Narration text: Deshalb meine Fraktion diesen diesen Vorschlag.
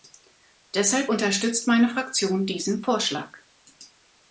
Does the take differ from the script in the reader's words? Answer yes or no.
yes